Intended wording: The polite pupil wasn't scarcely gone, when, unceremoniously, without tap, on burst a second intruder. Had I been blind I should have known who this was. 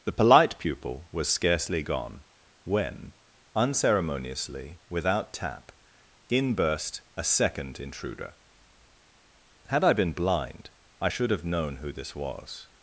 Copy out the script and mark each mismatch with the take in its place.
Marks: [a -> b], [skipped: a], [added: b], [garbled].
The polite pupil [wasn't -> was] scarcely gone, when, unceremoniously, without tap, [on -> in] burst a second intruder. Had I been blind I should have known who this was.